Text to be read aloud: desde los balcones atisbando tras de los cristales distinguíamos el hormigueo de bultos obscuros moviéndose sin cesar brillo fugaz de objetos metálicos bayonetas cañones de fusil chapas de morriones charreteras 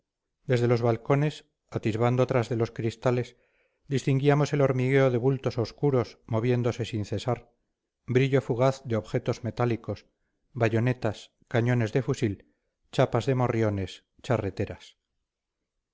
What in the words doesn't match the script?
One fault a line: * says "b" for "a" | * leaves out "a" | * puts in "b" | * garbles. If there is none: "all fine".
all fine